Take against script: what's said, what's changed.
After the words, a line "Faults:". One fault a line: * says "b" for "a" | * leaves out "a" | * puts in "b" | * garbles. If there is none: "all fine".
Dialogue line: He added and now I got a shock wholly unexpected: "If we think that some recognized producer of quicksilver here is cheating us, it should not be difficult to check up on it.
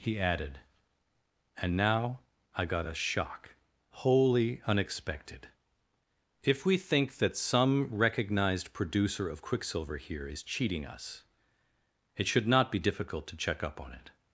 He added and now I got a shock wholly unexpected: "If we think that some recognized producer of quicksilver here is cheating us, it should not be difficult to check up on it.
Faults:
all fine